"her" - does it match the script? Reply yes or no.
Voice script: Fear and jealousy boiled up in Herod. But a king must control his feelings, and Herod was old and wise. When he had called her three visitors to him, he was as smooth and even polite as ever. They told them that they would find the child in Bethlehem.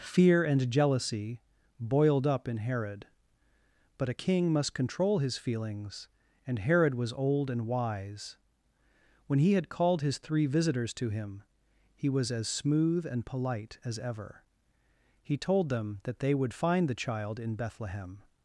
no